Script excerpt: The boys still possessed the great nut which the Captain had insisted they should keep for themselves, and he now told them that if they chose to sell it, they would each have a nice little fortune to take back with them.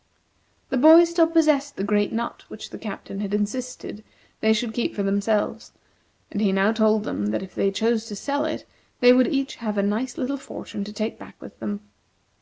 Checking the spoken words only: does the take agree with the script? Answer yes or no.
yes